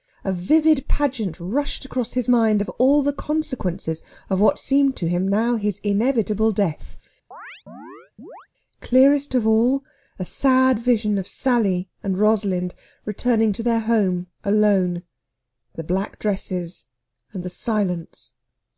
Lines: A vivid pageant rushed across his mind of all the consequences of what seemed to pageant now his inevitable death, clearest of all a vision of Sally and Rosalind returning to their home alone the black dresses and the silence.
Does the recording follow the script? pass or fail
fail